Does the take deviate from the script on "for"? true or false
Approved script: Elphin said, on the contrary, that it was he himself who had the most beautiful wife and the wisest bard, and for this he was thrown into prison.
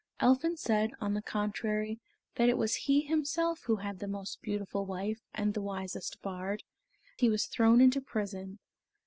true